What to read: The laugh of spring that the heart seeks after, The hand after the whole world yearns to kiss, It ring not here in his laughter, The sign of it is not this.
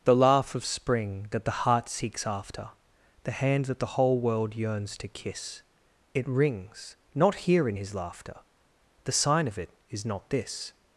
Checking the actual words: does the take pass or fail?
fail